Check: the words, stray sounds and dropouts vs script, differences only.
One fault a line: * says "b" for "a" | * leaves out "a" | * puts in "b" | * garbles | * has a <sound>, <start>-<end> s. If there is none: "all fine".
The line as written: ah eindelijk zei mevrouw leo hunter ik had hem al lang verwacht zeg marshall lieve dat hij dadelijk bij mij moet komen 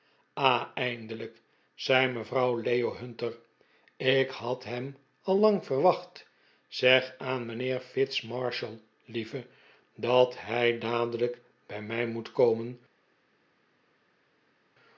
* puts in "aan mijnheer fitz"